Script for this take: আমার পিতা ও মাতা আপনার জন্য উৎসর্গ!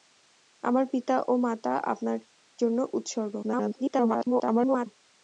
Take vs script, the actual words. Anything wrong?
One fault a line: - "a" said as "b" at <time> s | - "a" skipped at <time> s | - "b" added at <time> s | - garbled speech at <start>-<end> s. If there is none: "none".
- garbled speech at 3.4-4.9 s